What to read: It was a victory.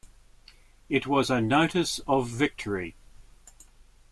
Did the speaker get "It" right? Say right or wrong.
right